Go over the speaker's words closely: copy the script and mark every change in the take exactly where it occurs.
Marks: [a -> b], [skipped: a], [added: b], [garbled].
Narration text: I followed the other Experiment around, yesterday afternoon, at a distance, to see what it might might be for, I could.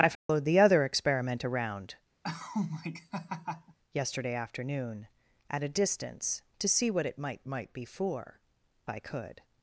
I followed the other Experiment around, yesterday afternoon, at a distance, to see what it might might be for, I could.